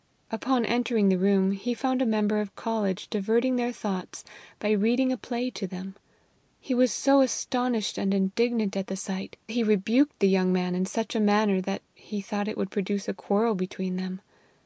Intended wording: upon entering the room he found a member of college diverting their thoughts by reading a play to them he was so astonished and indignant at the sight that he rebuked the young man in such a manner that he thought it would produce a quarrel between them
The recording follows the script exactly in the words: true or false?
false